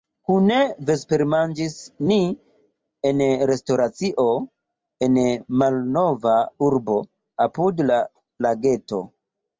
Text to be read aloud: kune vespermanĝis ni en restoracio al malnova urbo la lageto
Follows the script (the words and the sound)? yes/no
no